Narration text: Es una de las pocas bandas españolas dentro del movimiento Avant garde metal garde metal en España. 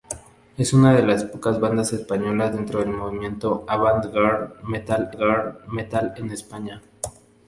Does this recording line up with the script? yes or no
yes